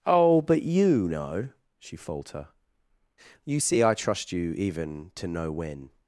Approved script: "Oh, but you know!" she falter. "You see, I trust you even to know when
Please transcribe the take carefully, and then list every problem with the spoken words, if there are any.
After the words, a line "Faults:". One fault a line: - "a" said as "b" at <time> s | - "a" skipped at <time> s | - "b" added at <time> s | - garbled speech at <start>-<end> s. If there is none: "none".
"Oh, but you know!" she falter. "You see, I trust you even to know when
Faults:
none